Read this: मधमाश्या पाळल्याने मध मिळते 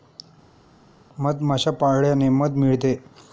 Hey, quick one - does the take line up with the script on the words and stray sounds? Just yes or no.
yes